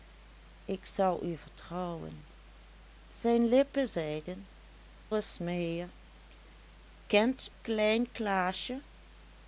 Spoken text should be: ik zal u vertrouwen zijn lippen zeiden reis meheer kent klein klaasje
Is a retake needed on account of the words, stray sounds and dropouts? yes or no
no